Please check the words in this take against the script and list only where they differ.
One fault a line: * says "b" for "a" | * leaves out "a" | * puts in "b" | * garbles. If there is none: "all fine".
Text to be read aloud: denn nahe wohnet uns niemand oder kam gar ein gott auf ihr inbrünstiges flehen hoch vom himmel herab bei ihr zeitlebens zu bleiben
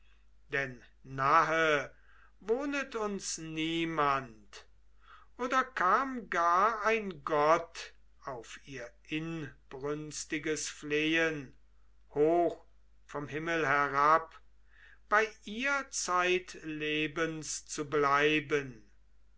all fine